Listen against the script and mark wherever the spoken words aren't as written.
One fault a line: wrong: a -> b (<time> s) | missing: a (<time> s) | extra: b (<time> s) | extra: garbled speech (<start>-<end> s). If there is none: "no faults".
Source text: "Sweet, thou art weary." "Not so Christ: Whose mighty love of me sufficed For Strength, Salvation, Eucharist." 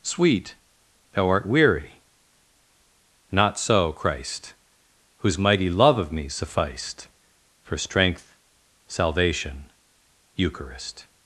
no faults